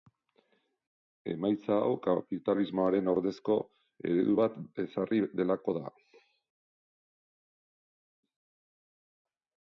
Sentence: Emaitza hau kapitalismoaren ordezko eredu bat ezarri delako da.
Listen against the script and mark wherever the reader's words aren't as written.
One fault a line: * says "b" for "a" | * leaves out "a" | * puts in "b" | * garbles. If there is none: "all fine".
all fine